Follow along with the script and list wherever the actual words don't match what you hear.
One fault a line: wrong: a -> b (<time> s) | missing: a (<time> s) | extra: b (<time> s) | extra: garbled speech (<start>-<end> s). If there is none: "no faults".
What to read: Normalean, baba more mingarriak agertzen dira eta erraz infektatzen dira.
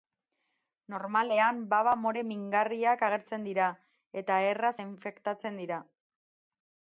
no faults